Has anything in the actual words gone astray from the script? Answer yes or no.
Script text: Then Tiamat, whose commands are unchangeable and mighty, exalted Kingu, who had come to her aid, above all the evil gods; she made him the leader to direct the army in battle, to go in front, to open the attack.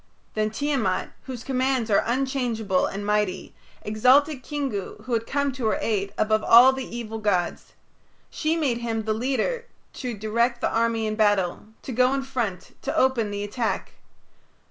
no